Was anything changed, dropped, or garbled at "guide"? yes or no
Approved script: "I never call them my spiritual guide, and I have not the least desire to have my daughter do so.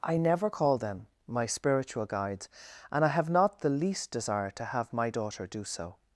yes